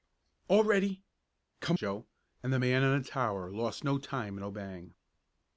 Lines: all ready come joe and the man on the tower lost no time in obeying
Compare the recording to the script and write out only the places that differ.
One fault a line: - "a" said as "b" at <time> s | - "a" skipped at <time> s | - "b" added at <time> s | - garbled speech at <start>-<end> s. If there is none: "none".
none